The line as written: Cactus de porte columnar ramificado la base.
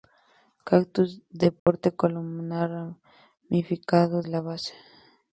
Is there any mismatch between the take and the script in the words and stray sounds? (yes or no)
yes